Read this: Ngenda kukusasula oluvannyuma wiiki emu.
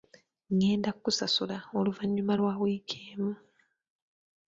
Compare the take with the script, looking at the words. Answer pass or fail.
fail